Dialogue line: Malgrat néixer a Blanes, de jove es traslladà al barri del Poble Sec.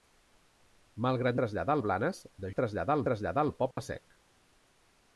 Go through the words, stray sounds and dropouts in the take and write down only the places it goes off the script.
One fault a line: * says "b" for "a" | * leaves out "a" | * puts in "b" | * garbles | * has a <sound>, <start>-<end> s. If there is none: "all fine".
* says "traslladà" for "néixer"
* leaves out "jove"
* says "traslladà" for "barri"
* has a dropout, 3.7-3.8 s